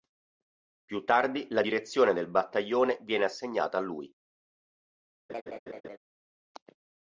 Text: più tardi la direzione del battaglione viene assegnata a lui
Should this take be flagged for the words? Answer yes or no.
no